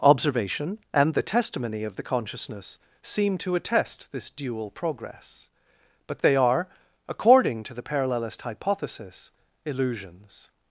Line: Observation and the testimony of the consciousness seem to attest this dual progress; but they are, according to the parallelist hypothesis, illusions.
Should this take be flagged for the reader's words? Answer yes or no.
no